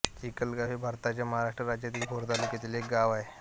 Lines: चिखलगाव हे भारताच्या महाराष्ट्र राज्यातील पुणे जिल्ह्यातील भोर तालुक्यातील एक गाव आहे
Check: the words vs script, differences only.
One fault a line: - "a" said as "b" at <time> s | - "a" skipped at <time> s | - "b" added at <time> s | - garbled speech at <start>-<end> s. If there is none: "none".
- "पुणे जिल्ह्यातील" skipped at 2.0 s